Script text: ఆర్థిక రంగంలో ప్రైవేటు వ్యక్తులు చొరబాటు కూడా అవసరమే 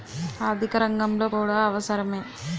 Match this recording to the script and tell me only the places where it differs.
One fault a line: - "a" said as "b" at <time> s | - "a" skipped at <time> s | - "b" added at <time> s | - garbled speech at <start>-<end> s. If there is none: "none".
- "ప్రైవేటు వ్యక్తులు చొరబాటు" skipped at 1.3 s